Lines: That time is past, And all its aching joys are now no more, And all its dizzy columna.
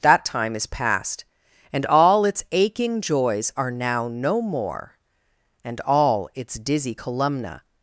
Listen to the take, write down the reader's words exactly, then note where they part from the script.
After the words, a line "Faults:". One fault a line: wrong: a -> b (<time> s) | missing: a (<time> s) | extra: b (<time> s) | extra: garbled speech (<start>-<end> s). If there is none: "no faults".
That time is past, And all its aching joys are now no more, And all its dizzy columna.
Faults:
no faults